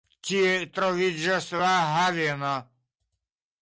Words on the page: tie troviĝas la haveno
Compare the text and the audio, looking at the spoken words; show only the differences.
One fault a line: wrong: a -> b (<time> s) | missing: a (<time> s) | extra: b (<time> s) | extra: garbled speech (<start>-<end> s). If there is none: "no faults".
no faults